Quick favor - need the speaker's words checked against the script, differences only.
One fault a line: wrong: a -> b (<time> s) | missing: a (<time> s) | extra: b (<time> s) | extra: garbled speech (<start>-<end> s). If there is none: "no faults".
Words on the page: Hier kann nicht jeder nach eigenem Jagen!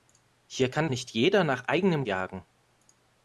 no faults